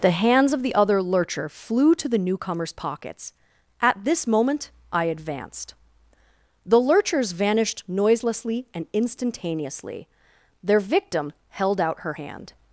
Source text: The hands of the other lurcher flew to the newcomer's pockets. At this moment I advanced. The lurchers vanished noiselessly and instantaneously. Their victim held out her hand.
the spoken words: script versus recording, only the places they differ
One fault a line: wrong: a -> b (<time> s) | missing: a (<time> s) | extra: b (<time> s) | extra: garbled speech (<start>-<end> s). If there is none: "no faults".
no faults